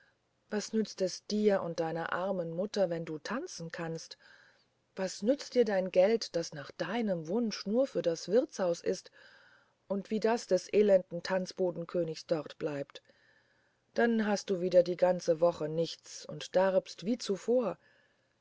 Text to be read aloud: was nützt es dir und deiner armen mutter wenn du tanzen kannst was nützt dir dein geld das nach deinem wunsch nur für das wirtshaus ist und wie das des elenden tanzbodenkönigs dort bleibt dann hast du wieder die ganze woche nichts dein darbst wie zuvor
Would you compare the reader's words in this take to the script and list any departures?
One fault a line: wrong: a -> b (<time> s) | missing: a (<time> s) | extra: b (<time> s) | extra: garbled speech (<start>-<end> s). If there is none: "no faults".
wrong: dein -> und (16.2 s)